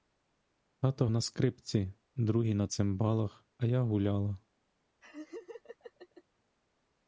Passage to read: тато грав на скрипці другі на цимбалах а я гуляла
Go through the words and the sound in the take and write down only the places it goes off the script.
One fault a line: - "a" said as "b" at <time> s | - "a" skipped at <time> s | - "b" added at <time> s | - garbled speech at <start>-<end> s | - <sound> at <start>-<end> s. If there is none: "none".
- "грав" skipped at 1.1 s
- laugh at 5.0-6.2 s